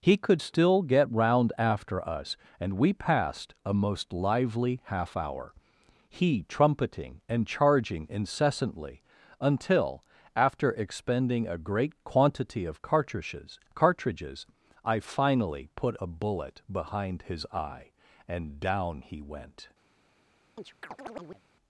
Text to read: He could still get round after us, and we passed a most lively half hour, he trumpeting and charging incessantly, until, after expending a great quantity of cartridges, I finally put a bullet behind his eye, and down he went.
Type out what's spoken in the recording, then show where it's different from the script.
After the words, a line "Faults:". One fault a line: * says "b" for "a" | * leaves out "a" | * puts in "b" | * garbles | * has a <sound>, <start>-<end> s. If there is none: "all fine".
He could still get round after us, and we passed a most lively half hour, he trumpeting and charging incessantly, until, after expending a great quantity of cartridges cartridges, I finally put a bullet behind his eye, and down he went.
Faults:
* puts in "cartridges"
* has a chirp, 20.6-21.4 s